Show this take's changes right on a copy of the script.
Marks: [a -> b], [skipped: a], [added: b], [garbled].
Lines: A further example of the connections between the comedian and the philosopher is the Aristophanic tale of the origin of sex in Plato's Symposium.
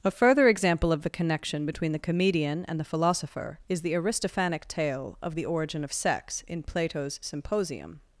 A further example of the [connections -> connection] between the comedian and the philosopher is the Aristophanic tale of the origin of sex in Plato's Symposium.